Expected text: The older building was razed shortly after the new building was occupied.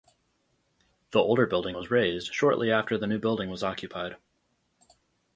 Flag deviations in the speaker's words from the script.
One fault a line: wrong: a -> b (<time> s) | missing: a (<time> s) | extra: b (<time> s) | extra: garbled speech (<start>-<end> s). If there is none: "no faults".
no faults